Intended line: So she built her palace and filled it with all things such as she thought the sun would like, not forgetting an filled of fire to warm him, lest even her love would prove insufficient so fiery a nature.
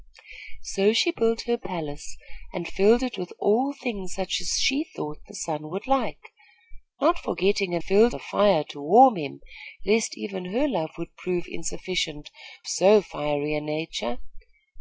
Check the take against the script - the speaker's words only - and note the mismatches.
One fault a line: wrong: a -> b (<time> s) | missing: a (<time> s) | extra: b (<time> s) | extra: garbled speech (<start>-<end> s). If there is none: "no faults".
no faults